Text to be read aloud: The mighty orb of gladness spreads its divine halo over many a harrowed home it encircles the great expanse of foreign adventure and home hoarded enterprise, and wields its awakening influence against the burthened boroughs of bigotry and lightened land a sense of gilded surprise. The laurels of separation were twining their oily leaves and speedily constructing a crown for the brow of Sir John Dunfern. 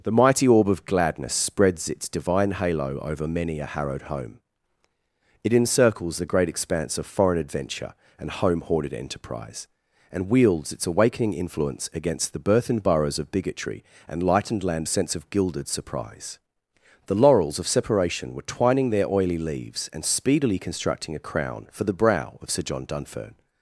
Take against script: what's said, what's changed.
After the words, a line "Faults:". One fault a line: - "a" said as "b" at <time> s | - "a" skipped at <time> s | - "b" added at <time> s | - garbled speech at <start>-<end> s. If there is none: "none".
The mighty orb of gladness spreads its divine halo over many a harrowed home it encircles the great expanse of foreign adventure and home hoarded enterprise, and wields its awakening influence against the burthened boroughs of bigotry and lightened land a sense of gilded surprise. The laurels of separation were twining their oily leaves and speedily constructing a crown for the brow of Sir John Dunfern.
Faults:
none